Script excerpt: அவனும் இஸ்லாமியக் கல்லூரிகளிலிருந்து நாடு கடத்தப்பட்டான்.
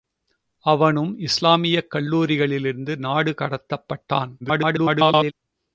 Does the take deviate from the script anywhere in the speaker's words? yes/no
yes